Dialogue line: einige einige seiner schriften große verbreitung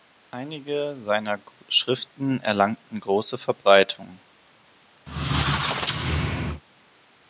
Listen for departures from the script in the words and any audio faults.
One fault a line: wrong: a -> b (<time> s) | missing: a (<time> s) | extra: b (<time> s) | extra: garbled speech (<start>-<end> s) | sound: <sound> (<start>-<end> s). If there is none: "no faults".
missing: einige (0.9 s)
extra: erlangten (2.4 s)
sound: squeak (5.1-6.6 s)